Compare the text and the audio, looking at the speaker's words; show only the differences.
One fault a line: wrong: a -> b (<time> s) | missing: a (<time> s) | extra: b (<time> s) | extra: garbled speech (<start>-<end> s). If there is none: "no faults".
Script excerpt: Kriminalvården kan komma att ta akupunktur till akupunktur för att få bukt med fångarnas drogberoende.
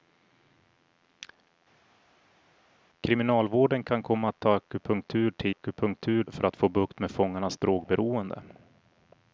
no faults